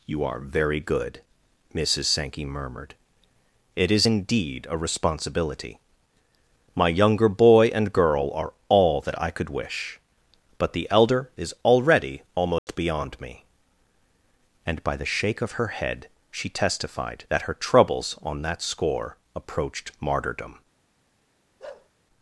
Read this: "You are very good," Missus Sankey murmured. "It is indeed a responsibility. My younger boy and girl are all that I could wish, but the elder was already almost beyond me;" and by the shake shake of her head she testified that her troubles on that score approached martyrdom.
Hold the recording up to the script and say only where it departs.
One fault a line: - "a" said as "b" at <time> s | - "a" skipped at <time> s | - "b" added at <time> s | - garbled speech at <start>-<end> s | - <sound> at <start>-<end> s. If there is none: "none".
- "was" said as "is" at 11.4 s
- dropout at 12.6-12.7 s
- "shake" skipped at 15.4 s
- bark at 21.6-21.9 s